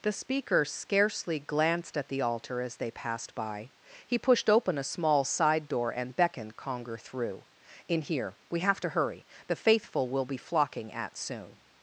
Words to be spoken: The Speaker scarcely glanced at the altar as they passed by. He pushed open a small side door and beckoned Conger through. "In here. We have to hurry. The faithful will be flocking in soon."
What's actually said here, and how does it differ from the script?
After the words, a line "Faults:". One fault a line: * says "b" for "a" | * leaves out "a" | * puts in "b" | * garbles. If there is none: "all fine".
The Speaker scarcely glanced at the altar as they passed by. He pushed open a small side door and beckoned Conger through. "In here. We have to hurry. The faithful will be flocking at soon."
Faults:
* says "at" for "in"